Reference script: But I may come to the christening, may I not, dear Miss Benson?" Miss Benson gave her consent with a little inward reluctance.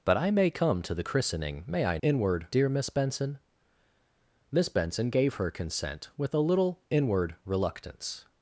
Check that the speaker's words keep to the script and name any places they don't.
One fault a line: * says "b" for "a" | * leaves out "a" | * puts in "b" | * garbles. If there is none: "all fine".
* says "inward" for "not"